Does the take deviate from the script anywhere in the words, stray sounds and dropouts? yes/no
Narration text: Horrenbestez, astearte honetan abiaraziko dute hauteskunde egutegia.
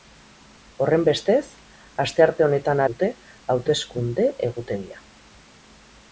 yes